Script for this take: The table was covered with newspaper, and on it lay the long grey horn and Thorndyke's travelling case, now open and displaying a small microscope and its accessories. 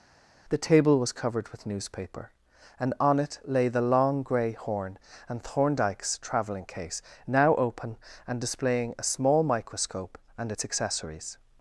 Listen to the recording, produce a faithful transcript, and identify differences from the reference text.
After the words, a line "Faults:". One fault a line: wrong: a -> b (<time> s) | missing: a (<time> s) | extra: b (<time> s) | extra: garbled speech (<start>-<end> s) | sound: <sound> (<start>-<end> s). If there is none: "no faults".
The table was covered with newspaper, and on it lay the long grey horn and Thorndyke's travelling case, now open and displaying a small microscope and its accessories.
Faults:
no faults